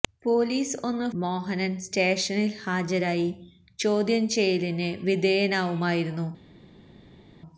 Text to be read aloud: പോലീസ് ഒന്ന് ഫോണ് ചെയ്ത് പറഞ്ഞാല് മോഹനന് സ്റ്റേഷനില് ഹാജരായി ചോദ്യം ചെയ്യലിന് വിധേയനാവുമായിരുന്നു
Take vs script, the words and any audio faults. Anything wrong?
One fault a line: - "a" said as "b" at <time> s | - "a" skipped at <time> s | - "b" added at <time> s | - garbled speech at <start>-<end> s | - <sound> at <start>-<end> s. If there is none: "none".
- "ഫോണ് ചെയ്ത് പറഞ്ഞാല്" skipped at 1.1 s